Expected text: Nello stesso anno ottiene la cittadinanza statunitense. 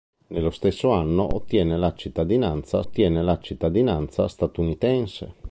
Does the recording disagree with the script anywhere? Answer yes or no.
yes